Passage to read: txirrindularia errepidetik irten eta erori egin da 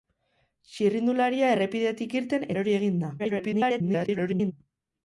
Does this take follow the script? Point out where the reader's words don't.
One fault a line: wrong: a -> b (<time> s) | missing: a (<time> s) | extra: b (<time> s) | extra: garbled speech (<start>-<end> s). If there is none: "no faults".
missing: eta (2.5 s)
extra: garbled speech (3.2-4.5 s)